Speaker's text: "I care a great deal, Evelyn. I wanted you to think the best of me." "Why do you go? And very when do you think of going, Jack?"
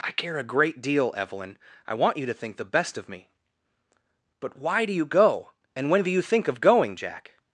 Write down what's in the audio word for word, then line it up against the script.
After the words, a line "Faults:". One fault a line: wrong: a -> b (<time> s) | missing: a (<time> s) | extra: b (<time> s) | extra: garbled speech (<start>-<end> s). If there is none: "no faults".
"I care a great deal, Evelyn. I want you to think the best of me." "But why do you go? And when do you think of going, Jack?"
Faults:
wrong: wanted -> want (1.9 s)
extra: But (4.4 s)
missing: very (5.9 s)